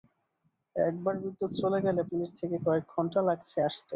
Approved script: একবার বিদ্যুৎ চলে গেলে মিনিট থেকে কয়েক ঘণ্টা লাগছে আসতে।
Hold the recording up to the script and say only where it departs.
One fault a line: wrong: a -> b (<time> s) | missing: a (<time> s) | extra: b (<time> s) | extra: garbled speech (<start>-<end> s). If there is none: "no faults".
no faults